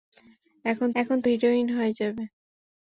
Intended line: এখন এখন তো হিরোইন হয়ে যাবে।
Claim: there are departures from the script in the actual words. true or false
false